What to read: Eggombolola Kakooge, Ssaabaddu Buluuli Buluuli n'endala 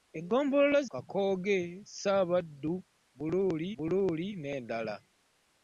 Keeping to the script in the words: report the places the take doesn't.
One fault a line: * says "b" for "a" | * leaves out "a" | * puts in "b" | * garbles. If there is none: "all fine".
all fine